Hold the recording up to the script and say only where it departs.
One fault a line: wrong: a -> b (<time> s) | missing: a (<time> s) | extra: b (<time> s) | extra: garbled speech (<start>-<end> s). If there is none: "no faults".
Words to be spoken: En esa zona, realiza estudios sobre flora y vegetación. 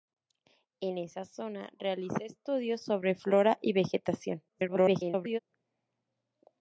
extra: garbled speech (4.5-5.4 s)